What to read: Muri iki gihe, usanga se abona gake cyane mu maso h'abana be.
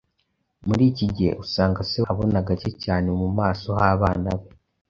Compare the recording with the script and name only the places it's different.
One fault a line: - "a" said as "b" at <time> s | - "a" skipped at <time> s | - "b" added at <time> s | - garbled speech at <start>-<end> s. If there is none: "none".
none